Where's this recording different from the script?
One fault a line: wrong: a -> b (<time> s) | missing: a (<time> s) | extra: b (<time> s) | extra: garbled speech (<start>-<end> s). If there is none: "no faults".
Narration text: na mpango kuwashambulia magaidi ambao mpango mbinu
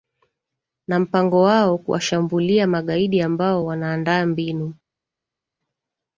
extra: wao (1.4 s)
wrong: mpango -> wanaandaa (3.6 s)